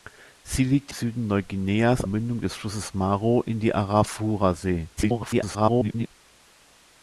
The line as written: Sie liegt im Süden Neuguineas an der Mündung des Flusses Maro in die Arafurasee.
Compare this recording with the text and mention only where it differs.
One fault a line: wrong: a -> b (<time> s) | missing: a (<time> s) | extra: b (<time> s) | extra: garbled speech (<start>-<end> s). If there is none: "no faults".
missing: im (0.9 s)
missing: an der (2.0 s)
extra: garbled speech (5.0-6.1 s)